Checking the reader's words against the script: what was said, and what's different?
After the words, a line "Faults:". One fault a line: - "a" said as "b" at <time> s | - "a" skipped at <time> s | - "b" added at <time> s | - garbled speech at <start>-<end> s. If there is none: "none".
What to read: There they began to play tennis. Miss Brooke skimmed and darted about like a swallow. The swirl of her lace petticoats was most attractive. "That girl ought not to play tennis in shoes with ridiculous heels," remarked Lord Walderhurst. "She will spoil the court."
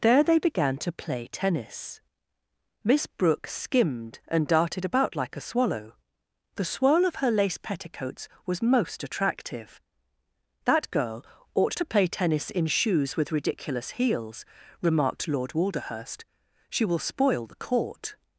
There they began to play tennis. Miss Brooke skimmed and darted about like a swallow. The swirl of her lace petticoats was most attractive. "That girl ought to play tennis in shoes with ridiculous heels," remarked Lord Walderhurst. "She will spoil the court."
Faults:
- "not" skipped at 11.8 s